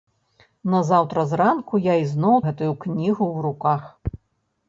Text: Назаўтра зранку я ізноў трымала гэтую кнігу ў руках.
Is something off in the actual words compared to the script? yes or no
yes